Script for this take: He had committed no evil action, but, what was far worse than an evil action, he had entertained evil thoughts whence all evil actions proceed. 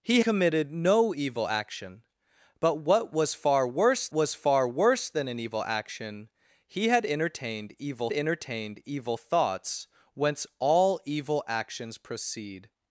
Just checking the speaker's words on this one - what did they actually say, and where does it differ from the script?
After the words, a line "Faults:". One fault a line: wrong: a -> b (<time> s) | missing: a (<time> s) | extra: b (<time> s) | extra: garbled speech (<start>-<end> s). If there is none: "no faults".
He committed no evil action, but, what was far worse was far worse than an evil action, he had entertained evil entertained evil thoughts whence all evil actions proceed.
Faults:
missing: had (0.2 s)
extra: was far worse (4.1 s)
extra: entertained evil (8.1 s)